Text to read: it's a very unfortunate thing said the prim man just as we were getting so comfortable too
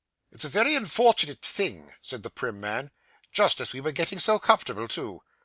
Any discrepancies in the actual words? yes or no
no